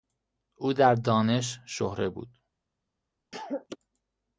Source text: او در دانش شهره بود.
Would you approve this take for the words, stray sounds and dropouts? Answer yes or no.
no